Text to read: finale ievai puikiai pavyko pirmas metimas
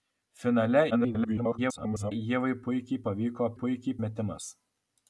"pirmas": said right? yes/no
no